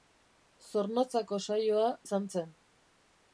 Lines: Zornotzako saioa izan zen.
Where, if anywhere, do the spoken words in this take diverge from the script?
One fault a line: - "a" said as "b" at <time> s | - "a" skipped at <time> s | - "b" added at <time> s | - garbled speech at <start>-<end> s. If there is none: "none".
none